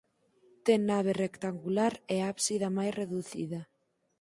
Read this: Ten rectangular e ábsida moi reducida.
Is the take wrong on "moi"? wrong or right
wrong